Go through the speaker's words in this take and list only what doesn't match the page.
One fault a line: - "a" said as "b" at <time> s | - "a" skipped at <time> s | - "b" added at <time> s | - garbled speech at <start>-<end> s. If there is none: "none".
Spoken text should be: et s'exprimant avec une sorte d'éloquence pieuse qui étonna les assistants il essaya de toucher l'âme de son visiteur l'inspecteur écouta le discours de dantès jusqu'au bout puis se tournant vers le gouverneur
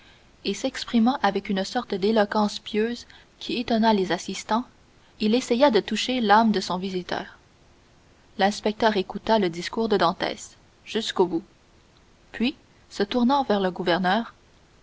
none